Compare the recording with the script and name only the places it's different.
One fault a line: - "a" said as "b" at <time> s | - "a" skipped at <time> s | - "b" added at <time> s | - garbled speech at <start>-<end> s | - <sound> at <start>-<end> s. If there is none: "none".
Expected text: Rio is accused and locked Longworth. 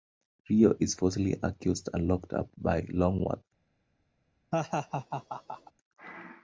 - "falsely" added at 0.9 s
- "up by" added at 2.3 s
- laugh at 4.5-5.7 s